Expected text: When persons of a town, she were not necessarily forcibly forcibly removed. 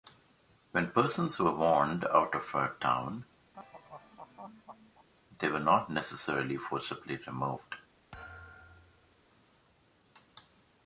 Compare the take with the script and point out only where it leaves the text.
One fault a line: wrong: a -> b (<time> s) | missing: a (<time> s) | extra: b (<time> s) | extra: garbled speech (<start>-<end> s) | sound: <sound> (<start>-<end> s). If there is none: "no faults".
extra: were warned out (1.4 s)
sound: laugh (3.5-5.1 s)
wrong: she -> they (5.4 s)
missing: forcibly (7.2 s)
sound: thud (8.1-9.2 s)